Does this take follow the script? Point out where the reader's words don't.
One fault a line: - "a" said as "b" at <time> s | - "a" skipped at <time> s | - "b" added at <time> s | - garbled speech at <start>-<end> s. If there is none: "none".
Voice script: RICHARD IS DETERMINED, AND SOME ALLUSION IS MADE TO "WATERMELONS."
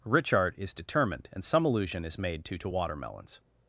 - "TO" added at 2.6 s